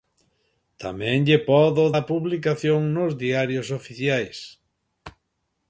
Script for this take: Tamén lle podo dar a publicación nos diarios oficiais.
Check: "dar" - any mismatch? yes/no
yes